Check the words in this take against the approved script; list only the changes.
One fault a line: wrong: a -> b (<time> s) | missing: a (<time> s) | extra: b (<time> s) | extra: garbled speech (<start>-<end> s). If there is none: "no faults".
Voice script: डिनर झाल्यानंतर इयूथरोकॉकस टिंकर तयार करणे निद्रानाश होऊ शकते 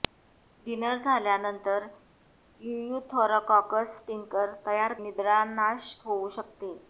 missing: करणे (4.9 s)